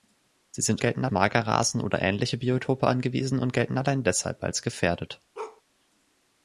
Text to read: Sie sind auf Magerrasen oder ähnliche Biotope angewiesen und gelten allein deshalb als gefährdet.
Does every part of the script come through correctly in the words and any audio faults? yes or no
no